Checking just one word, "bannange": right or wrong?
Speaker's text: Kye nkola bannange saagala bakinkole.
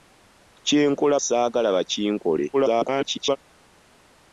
wrong